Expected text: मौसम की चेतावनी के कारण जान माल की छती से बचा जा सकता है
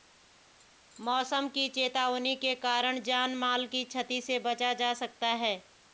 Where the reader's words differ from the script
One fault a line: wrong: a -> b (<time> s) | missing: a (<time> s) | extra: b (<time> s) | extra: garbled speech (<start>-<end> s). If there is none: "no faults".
no faults